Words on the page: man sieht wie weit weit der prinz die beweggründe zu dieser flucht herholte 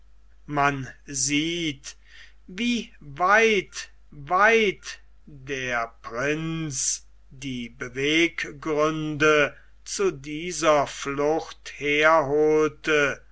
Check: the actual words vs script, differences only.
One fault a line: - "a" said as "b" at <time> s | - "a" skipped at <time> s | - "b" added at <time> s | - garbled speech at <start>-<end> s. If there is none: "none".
none